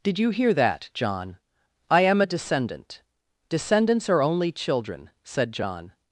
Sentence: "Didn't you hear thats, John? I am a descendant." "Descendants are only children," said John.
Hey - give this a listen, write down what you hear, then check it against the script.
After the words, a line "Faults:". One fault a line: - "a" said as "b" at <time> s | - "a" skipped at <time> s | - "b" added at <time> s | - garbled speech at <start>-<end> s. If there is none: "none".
"Did you hear that, John? I am a descendant." "Descendants are only children," said John.
Faults:
- "Didn't" said as "Did" at 0.0 s
- "thats" said as "that" at 0.5 s